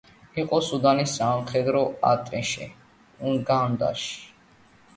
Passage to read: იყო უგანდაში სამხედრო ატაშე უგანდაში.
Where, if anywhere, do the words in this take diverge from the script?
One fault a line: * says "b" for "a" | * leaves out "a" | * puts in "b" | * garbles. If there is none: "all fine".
* says "სუდანის" for "უგანდაში"